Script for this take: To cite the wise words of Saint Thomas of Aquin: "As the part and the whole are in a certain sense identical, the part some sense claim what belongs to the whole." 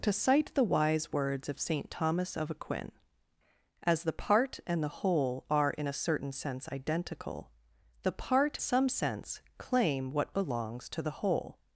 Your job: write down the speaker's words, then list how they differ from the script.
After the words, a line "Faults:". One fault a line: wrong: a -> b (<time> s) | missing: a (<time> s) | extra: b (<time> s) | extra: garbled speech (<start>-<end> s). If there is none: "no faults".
To cite the wise words of Saint Thomas of Aquin: "As the part and the whole are in a certain sense identical, the part some sense claim what belongs to the whole."
Faults:
no faults